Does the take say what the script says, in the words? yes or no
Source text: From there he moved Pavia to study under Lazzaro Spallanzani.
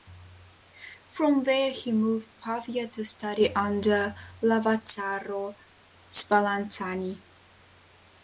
yes